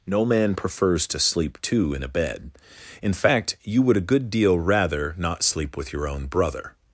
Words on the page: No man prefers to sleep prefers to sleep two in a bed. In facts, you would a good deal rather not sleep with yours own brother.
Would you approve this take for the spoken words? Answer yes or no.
no